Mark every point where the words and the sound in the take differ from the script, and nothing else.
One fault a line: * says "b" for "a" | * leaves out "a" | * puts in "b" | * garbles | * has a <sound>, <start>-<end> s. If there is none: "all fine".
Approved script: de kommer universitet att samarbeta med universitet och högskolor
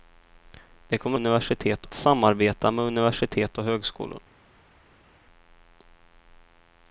all fine